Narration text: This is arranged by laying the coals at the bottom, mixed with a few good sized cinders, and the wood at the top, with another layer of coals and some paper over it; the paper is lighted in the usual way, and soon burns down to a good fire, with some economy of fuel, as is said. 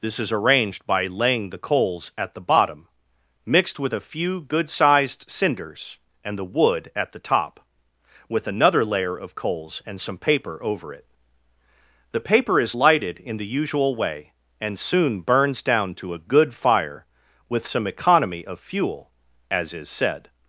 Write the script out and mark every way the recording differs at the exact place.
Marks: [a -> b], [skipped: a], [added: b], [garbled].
This is arranged by laying the coals at the bottom, mixed with a few good sized cinders, and the wood at the top, with another layer of coals and some paper over it; the paper is lighted in the usual way, and soon burns down to a good fire, with some economy of fuel, as is said.